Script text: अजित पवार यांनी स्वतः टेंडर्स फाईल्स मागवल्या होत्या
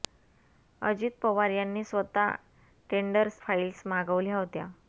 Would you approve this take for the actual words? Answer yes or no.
yes